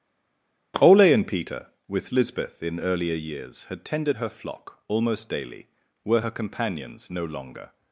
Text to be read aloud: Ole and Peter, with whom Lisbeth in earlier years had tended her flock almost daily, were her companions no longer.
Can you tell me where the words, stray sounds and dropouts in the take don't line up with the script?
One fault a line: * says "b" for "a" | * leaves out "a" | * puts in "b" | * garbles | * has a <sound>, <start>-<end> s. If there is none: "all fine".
* leaves out "whom"